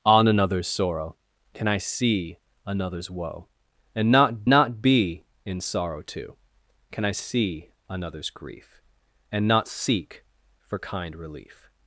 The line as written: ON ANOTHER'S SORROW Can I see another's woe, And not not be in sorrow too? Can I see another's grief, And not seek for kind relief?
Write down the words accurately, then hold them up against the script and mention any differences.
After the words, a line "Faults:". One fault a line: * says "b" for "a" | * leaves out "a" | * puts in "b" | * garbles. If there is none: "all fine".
ON ANOTHER'S SORROW Can I see another's woe, And not not be in sorrow too? Can I see another's grief, And not seek for kind relief?
Faults:
all fine